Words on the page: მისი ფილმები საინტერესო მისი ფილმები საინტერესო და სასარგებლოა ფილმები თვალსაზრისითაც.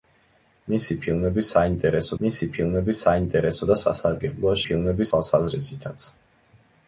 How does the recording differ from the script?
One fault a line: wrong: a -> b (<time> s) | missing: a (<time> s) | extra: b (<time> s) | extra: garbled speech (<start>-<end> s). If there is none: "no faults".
no faults